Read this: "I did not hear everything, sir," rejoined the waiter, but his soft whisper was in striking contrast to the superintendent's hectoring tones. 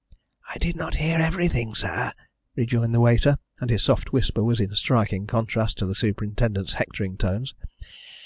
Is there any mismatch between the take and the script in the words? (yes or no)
yes